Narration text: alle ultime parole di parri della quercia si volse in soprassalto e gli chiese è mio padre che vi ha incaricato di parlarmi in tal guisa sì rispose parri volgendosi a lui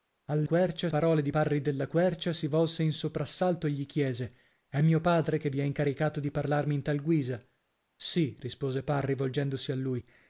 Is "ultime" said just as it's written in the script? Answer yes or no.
no